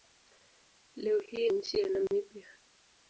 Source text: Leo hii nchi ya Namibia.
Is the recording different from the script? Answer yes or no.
no